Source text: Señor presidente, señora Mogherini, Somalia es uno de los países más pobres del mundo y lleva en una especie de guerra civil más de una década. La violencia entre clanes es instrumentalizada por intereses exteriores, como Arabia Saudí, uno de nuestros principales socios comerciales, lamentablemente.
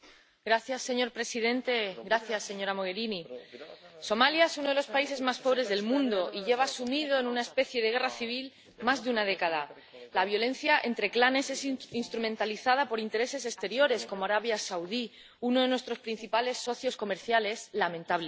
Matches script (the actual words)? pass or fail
fail